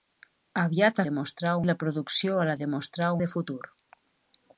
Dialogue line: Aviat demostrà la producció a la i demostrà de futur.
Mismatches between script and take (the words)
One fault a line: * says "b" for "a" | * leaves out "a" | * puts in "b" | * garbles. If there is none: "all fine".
all fine